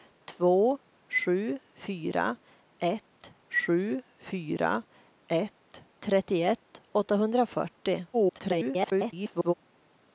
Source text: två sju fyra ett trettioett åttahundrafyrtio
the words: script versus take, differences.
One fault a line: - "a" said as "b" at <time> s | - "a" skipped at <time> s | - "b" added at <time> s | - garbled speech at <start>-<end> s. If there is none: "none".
- "sju fyra ett" added at 3.5 s
- garbled speech at 8.1-9.5 s